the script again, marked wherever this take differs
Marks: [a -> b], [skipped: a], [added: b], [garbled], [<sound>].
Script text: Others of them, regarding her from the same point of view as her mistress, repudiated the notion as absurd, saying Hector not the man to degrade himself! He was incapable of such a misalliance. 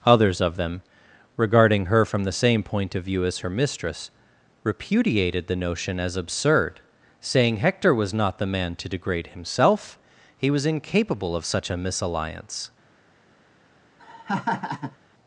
Others of them, regarding her from the same point of view as her mistress, repudiated the notion as absurd, saying Hector [added: was] not the man to degrade himself! He was incapable of such a misalliance. [laugh]